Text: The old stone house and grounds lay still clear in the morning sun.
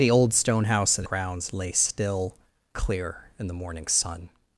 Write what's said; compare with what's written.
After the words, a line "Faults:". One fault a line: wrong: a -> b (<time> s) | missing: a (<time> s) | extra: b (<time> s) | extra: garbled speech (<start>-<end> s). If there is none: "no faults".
The old stone house and grounds lay still clear in the morning sun.
Faults:
no faults